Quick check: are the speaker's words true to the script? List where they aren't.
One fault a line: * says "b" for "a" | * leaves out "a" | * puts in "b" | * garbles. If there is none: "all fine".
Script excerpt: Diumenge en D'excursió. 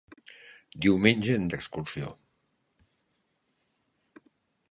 all fine